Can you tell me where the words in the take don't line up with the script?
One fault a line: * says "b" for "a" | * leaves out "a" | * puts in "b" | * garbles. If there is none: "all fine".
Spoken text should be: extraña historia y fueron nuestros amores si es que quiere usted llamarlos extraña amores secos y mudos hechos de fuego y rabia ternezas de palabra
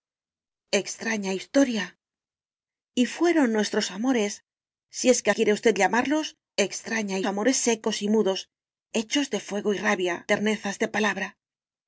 all fine